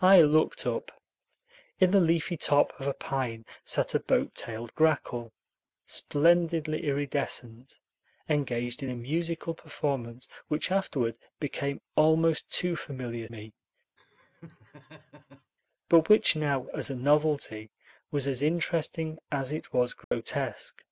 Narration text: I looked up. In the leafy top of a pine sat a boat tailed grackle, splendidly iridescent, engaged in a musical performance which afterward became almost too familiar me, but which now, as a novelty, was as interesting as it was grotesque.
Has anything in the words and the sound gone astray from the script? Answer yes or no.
yes